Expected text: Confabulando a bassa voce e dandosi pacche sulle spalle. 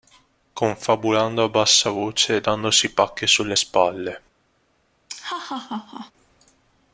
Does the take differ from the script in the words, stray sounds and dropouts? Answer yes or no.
yes